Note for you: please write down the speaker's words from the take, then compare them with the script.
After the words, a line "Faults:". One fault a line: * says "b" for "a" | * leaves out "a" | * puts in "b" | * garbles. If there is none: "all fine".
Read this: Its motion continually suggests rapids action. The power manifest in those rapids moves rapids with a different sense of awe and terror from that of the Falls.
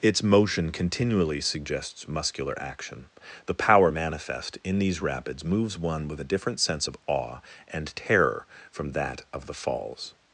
Its motion continually suggests muscular action. The power manifest in these rapids moves one with a different sense of awe and terror from that of the Falls.
Faults:
* says "muscular" for "rapids"
* says "these" for "those"
* says "one" for "rapids"